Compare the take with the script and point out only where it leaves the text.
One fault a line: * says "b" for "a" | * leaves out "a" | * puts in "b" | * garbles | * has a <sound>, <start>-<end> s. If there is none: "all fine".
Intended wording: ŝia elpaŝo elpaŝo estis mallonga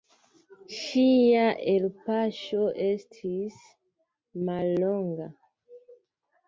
* leaves out "elpaŝo"